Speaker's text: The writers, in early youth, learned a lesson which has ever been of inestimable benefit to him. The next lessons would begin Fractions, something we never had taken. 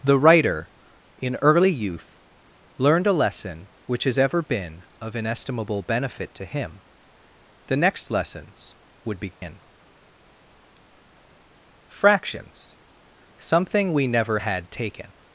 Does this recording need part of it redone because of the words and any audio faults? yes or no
yes